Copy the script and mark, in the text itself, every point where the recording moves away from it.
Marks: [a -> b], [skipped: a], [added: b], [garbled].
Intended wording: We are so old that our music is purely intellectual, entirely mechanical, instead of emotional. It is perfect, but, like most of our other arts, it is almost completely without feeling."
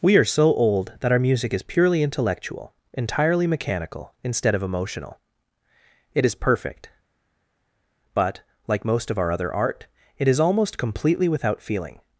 We are so old that our music is purely intellectual, entirely mechanical, instead of emotional. It is perfect, but, like most of our other [arts, -> art] it is almost completely without feeling."